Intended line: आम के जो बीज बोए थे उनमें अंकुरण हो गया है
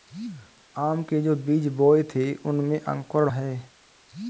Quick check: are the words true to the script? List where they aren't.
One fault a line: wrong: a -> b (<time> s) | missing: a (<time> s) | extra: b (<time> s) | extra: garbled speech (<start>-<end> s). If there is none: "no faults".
missing: हो गया (3.3 s)